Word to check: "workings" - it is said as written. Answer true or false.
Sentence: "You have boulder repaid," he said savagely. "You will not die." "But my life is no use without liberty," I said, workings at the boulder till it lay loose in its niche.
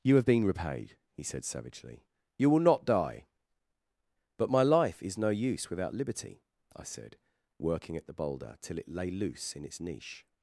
false